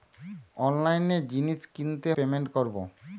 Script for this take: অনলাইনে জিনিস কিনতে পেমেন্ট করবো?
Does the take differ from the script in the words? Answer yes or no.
no